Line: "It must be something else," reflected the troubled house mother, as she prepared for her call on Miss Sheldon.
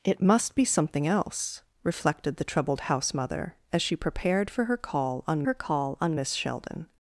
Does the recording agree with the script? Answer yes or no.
no